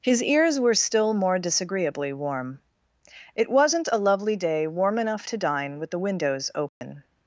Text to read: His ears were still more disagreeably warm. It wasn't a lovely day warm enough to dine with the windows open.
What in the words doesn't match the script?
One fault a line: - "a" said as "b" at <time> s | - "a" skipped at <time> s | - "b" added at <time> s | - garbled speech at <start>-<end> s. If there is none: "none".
none